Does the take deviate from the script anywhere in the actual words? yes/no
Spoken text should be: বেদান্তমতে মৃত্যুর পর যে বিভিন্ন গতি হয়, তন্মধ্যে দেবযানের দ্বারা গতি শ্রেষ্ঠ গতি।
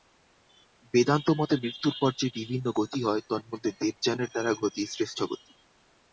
no